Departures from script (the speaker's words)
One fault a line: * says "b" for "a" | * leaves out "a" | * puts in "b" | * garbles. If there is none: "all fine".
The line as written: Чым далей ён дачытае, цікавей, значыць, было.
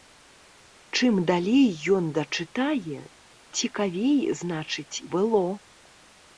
all fine